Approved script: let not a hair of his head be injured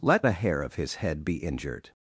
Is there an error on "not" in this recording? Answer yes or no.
yes